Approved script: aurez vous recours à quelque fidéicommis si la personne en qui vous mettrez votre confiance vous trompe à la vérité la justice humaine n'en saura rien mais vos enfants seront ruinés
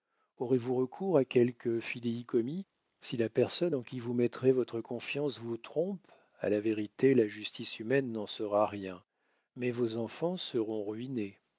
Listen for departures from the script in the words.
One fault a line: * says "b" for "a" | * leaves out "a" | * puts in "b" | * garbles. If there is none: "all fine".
all fine